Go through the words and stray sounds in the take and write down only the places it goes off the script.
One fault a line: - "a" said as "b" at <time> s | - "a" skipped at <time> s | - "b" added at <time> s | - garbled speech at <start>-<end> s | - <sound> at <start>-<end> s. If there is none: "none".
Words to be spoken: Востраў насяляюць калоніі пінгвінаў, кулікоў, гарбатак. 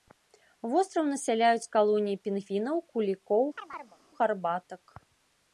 - chirp at 3.6-4.0 s